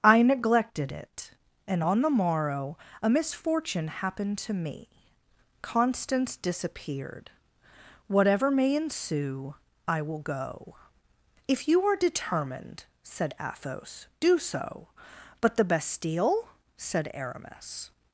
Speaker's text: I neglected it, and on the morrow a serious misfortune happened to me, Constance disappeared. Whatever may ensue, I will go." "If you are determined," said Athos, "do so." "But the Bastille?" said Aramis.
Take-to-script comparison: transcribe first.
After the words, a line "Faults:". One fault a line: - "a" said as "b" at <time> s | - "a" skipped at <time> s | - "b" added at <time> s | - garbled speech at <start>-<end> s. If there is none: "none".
I neglected it, and on the morrow a misfortune happened to me, Constance disappeared. Whatever may ensue, I will go." "If you are determined," said Athos, "do so." "But the Bastille?" said Aramis.
Faults:
- "serious" skipped at 3.1 s